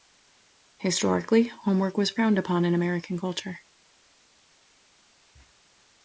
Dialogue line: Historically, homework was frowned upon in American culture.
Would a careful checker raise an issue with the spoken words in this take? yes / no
no